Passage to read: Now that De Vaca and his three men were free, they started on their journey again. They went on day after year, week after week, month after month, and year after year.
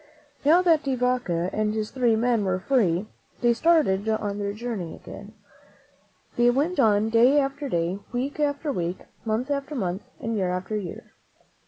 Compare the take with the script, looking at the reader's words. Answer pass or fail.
fail